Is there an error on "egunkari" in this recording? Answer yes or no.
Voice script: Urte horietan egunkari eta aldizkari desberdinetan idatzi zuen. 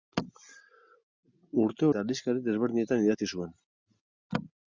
yes